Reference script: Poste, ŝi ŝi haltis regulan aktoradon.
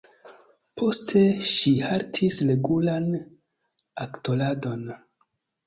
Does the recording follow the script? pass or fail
fail